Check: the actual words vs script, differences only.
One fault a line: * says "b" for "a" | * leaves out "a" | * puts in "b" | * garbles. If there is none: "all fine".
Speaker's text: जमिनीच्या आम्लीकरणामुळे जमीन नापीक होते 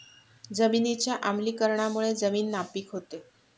all fine